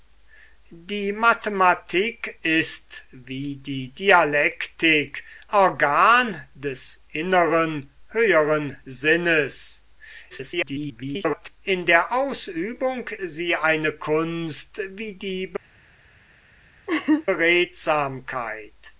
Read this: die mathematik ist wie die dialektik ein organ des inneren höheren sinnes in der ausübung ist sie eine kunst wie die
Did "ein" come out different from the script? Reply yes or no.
yes